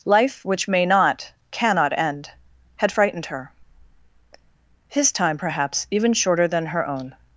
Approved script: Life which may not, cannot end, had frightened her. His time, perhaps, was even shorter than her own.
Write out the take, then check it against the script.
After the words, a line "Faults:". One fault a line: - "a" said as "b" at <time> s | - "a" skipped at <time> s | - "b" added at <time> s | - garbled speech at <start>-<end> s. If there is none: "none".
Life which may not, cannot end, had frightened her. His time, perhaps, even shorter than her own.
Faults:
- "was" skipped at 5.9 s